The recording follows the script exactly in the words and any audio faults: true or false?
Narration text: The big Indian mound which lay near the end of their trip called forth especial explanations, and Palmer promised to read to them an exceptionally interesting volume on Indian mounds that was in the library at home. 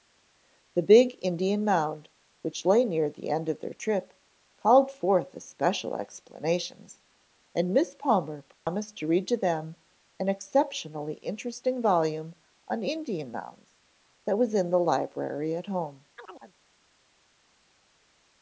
false